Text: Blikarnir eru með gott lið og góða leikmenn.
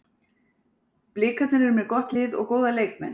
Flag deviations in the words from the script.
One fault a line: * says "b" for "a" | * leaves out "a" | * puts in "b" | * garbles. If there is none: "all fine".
all fine